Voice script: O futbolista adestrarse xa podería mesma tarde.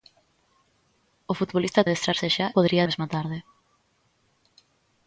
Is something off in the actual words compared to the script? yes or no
no